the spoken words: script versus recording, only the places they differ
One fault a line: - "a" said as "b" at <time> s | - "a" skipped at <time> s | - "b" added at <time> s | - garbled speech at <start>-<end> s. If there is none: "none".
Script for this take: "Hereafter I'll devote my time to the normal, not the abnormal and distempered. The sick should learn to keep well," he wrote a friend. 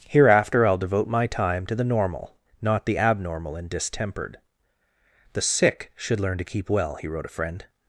none